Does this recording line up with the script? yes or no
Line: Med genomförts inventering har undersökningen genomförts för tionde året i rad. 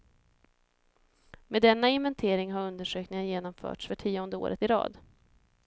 no